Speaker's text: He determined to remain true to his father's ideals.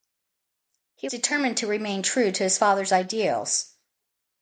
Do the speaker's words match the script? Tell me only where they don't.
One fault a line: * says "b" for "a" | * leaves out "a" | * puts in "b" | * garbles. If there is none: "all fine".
all fine